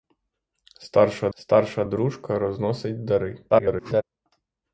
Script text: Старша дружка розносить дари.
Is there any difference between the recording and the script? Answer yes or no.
yes